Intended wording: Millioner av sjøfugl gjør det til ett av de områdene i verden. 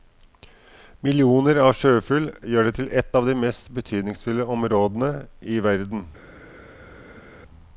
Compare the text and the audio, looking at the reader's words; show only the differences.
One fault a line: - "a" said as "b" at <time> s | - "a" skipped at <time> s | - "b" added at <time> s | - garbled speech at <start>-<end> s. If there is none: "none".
- "mest betydningsfulle" added at 3.4 s